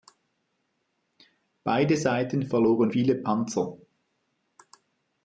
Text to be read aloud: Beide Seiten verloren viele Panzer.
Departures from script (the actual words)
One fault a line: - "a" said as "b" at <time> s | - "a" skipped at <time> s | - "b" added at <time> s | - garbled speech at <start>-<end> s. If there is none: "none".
none